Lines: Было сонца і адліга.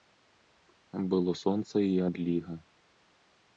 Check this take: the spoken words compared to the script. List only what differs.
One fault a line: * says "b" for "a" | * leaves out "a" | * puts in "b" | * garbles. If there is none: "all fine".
all fine